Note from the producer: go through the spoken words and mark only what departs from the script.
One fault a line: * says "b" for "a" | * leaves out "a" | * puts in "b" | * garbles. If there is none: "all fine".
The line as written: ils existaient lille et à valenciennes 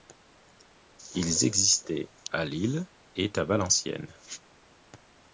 * puts in "à"